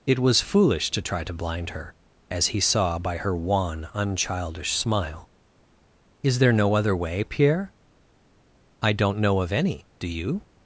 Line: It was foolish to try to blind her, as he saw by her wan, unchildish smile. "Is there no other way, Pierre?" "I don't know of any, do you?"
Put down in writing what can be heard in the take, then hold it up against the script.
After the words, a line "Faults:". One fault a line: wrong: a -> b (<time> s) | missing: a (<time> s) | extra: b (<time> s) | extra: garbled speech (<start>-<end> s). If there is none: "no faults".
It was foolish to try to blind her, as he saw by her wan, unchildish smile. "Is there no other way, Pierre?" "I don't know of any, do you?"
Faults:
no faults